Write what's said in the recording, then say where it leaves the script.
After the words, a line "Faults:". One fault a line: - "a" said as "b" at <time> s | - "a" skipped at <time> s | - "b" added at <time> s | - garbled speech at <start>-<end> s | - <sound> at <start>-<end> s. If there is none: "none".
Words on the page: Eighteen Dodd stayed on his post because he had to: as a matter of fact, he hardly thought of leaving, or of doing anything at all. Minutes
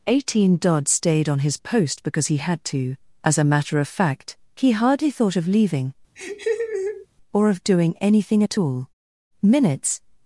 Eighteen Dodd stayed on his post because he had to: as a matter of fact, he hardly thought of leaving, or of doing anything at all. Minutes
Faults:
- laugh at 6.2-7.1 s